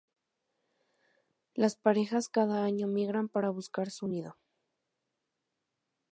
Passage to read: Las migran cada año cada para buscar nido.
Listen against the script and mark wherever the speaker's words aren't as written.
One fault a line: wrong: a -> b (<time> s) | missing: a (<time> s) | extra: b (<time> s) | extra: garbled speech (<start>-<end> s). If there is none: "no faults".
wrong: migran -> parejas (1.8 s)
wrong: cada -> migran (2.9 s)
extra: su (3.9 s)